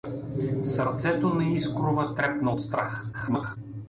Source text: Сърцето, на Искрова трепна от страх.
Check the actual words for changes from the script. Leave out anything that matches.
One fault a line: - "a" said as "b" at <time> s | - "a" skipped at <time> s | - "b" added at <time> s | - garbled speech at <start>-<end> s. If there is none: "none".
- garbled speech at 3.1-3.6 s